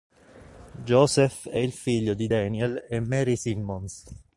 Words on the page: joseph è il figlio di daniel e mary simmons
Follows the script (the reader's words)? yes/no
yes